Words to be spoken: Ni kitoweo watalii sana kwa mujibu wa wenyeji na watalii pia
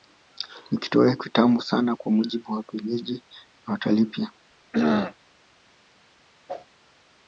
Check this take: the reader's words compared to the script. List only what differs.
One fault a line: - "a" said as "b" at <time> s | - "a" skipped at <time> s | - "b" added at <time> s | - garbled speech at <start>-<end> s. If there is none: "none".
- "watalii" said as "kitamu" at 1.1 s